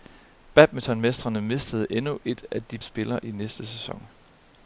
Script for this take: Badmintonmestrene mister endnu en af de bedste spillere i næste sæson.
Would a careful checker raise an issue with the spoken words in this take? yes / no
yes